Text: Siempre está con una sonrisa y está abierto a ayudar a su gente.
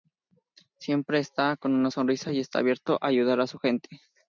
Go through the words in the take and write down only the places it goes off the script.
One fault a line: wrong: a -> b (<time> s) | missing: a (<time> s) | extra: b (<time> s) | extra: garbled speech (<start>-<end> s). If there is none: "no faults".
no faults